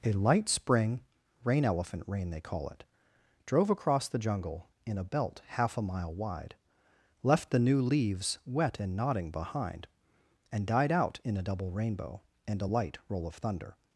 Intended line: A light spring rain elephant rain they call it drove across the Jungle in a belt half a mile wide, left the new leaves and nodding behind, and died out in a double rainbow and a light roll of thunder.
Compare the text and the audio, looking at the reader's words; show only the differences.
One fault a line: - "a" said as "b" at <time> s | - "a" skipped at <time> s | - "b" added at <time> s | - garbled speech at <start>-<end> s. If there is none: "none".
- "wet" added at 8.4 s